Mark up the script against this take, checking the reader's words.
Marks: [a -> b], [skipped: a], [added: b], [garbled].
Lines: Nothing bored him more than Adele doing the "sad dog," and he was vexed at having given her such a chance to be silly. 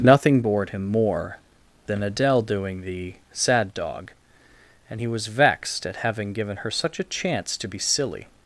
Nothing bored him more than Adele doing the "sad dog," and he was vexed at having given her such a chance to be silly.